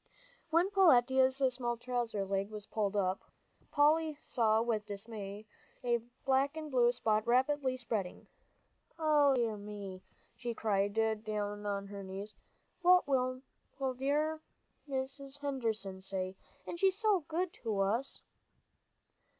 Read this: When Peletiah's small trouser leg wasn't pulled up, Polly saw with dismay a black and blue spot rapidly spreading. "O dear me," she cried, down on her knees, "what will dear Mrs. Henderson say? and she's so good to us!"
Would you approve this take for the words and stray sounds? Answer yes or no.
no